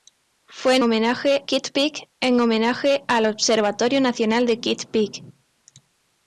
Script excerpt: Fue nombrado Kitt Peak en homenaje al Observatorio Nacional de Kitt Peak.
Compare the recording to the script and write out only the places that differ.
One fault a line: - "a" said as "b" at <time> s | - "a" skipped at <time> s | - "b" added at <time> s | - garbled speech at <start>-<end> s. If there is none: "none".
- "nombrado" said as "homenaje" at 0.8 s